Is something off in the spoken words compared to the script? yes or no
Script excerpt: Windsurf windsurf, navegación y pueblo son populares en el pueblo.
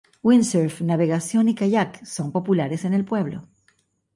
yes